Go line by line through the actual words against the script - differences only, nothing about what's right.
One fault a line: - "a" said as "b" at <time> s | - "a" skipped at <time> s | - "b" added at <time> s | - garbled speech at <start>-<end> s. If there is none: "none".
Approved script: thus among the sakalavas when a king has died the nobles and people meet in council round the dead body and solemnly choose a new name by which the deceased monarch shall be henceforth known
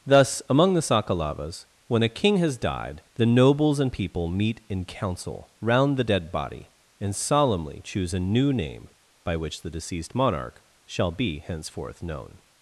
none